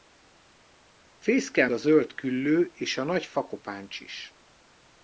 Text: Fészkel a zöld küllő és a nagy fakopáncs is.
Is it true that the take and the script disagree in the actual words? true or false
false